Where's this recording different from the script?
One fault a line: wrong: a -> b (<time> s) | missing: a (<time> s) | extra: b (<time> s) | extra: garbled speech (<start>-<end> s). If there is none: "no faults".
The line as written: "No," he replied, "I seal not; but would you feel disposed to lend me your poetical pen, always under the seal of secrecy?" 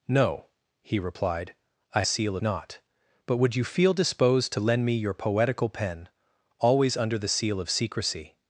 no faults